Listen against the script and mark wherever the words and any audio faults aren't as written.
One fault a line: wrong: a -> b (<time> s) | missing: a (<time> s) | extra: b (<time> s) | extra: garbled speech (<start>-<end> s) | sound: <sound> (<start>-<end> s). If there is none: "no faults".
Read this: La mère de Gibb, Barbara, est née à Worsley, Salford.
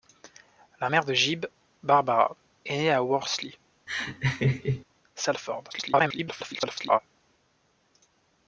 sound: laugh (3.9-4.8 s)
extra: garbled speech (5.7-7.0 s)